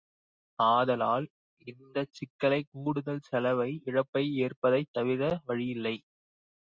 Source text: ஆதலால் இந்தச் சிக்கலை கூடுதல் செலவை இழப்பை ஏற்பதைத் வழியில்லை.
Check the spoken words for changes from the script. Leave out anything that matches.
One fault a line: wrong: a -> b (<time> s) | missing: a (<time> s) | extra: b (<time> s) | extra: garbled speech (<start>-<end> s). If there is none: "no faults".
extra: தவிர (4.9 s)